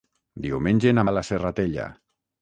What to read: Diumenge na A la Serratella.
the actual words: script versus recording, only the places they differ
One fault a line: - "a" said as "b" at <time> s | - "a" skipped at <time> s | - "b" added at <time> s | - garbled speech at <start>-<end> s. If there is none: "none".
none